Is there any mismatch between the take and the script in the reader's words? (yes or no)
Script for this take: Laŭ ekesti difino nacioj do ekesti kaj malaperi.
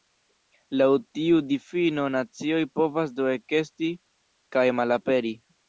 yes